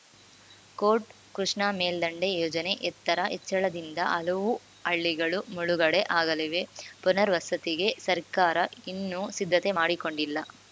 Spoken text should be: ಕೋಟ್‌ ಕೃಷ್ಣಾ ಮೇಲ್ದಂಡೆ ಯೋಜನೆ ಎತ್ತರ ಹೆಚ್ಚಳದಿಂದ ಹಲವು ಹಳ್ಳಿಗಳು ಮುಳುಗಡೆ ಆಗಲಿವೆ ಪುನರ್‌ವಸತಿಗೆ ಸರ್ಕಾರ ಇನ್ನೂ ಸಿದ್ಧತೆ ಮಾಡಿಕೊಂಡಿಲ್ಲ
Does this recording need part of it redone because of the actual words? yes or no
no